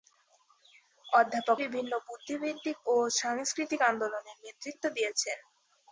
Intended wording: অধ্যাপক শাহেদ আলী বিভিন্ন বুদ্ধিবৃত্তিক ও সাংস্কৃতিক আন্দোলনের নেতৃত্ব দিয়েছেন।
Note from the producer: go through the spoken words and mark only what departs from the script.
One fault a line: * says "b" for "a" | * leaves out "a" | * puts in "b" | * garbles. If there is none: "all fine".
* leaves out "শাহেদ আলী"